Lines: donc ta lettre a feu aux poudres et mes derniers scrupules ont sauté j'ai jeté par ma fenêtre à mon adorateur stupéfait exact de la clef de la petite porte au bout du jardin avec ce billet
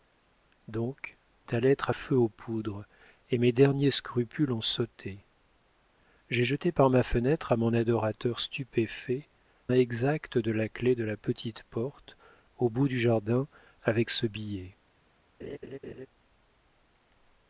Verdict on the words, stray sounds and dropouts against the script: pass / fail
fail